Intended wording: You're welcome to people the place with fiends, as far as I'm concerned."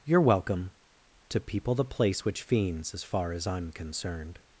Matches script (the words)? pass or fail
fail